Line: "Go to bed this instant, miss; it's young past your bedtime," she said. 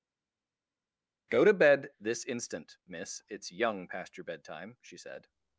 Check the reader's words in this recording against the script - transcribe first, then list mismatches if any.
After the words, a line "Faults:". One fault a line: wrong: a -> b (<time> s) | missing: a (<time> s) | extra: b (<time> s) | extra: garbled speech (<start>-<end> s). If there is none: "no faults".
"Go to bed this instant, miss; it's young past your bedtime," she said.
Faults:
no faults